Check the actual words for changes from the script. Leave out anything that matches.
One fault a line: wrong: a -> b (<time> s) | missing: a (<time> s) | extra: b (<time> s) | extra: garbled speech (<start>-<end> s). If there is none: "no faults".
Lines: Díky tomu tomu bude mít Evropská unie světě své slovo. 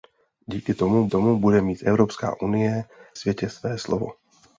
no faults